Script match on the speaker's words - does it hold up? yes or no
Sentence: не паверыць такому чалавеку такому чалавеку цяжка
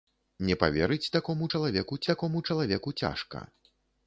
yes